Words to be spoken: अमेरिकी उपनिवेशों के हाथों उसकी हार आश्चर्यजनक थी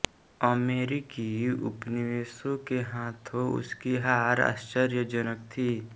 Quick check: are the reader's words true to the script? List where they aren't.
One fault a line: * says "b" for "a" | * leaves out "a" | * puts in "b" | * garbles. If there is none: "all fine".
all fine